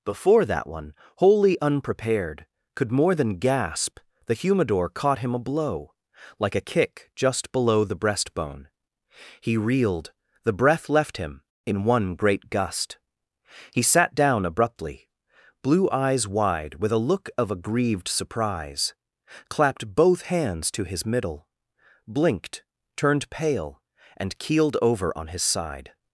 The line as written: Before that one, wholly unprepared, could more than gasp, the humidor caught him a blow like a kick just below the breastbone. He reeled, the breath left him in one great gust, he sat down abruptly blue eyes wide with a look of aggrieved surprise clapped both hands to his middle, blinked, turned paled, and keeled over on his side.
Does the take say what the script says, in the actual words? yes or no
no